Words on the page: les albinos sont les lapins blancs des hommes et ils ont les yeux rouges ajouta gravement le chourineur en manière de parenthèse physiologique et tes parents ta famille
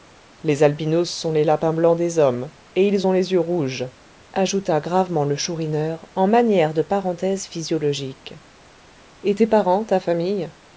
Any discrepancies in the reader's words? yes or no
no